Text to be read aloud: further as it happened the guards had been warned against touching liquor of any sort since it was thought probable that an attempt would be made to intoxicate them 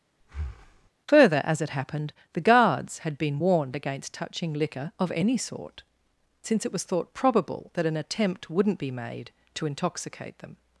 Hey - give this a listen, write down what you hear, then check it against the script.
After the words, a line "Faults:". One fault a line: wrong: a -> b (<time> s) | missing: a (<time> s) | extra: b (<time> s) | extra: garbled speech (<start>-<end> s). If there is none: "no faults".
further as it happened the guards had been warned against touching liquor of any sort since it was thought probable that an attempt wouldn't be made to intoxicate them
Faults:
wrong: would -> wouldn't (8.5 s)